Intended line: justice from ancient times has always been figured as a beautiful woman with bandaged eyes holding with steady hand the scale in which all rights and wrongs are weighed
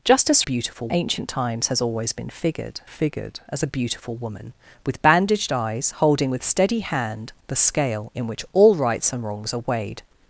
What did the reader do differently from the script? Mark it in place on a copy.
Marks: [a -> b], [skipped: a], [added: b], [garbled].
justice [from -> beautiful] ancient times has always been figured [added: figured] as a beautiful woman with bandaged eyes holding with steady hand the scale in which all rights and wrongs are weighed